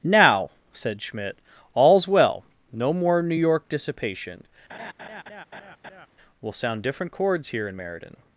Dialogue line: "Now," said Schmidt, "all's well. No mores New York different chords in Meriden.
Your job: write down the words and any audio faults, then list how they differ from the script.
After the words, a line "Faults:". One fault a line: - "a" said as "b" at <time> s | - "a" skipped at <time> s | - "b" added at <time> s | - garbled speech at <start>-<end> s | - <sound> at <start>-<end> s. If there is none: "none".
"Now," said Schmidt, "all's well. No more New York dissipation. We'll sound different chords here in Meriden.
Faults:
- "mores" said as "more" at 2.9 s
- "dissipation We'll sound" added at 3.7 s
- laugh at 4.7-6.1 s
- "here" added at 7.5 s